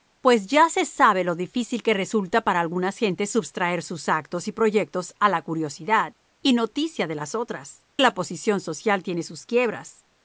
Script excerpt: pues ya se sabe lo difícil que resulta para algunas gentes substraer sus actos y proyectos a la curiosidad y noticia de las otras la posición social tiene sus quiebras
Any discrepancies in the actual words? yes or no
no